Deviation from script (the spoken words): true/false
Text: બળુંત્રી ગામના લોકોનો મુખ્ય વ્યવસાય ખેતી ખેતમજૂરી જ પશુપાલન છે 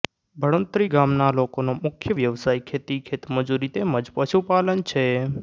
true